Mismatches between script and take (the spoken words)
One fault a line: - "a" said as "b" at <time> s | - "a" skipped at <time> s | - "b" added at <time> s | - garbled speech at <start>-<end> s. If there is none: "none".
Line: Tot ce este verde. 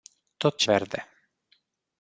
- "este" skipped at 0.7 s